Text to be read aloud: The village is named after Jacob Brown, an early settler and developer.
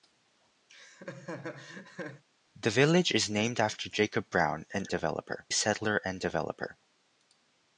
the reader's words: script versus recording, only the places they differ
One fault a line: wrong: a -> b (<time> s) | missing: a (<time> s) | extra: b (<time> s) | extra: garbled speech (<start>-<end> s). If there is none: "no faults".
wrong: early -> developer (4.9 s)